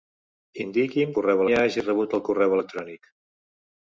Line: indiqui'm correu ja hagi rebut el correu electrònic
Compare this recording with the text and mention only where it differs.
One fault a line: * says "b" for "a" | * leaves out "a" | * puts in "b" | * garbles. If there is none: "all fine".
all fine